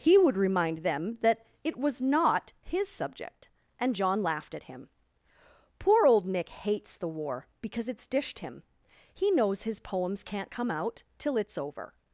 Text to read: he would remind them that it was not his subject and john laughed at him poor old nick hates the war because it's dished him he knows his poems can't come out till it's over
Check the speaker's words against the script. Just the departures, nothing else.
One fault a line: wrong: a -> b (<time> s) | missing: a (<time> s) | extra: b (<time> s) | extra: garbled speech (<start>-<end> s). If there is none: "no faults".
no faults